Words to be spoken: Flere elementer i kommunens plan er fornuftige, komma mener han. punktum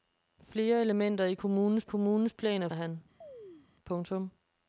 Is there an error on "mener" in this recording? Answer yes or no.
yes